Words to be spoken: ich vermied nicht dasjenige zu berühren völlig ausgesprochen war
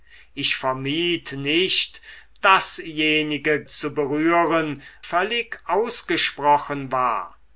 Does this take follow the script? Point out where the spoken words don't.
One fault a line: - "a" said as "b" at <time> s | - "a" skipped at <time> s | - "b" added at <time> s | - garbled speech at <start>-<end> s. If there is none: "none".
none